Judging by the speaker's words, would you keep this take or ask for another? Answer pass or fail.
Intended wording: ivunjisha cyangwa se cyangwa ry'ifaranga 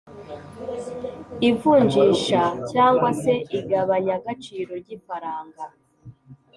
fail